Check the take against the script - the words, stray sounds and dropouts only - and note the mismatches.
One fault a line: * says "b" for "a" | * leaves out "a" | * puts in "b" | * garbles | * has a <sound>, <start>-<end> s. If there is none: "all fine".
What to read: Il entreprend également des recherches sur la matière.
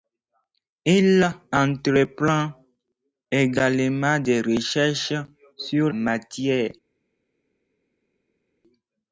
* leaves out "la"